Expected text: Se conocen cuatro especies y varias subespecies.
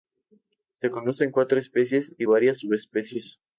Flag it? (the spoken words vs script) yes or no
no